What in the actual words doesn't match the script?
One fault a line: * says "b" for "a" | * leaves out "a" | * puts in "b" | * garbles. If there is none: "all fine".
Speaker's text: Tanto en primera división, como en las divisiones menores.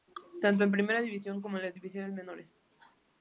all fine